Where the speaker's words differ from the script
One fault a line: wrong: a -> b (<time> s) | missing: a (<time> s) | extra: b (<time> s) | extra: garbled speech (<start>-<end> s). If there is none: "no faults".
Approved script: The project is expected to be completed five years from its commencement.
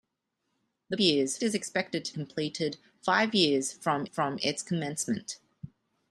wrong: project -> years (1.0 s)
missing: be (2.1 s)
extra: from (4.0 s)